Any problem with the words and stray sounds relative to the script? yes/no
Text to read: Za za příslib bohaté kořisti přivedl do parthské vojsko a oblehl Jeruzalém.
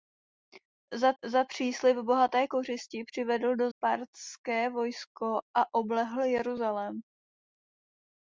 no